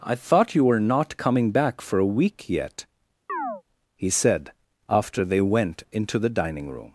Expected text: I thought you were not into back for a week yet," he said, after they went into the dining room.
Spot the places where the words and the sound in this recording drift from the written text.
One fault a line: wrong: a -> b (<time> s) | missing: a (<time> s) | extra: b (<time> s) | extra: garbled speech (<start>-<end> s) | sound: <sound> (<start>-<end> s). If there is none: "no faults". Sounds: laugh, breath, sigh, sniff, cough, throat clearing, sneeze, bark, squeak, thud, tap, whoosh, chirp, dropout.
wrong: into -> coming (1.2 s)
sound: chirp (3.3-3.6 s)